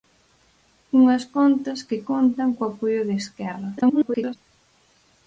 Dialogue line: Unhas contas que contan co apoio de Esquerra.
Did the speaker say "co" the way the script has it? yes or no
yes